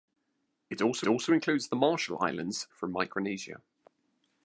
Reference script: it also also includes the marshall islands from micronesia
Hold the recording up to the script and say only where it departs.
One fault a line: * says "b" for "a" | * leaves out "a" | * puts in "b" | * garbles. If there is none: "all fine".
all fine